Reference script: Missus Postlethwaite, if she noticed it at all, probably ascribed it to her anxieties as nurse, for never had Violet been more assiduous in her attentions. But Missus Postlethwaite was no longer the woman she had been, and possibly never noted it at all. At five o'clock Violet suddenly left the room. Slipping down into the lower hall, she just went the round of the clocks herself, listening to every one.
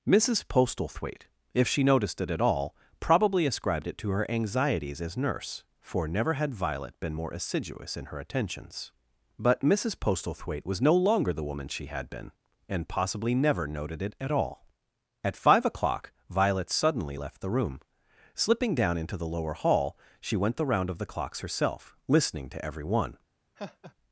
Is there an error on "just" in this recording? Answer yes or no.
yes